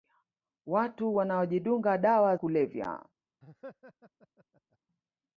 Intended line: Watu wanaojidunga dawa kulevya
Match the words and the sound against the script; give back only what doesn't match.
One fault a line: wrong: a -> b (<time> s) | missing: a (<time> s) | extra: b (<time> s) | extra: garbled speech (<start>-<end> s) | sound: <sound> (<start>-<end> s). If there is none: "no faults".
sound: laugh (3.4-4.8 s)